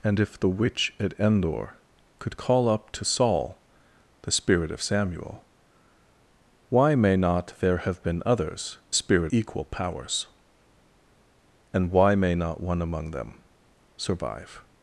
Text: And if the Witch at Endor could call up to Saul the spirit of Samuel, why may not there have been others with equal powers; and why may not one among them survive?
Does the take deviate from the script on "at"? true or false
false